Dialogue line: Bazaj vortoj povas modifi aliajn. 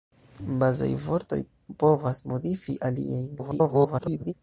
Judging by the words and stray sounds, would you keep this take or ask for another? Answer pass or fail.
fail